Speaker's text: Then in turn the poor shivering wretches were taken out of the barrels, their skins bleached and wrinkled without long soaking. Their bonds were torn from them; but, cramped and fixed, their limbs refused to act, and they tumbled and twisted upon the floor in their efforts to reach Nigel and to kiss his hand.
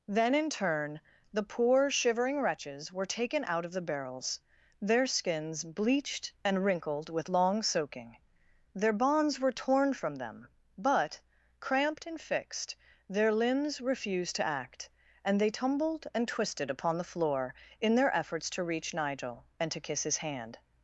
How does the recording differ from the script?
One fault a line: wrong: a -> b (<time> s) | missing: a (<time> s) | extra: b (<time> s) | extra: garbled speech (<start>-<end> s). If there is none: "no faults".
wrong: without -> with (7.1 s)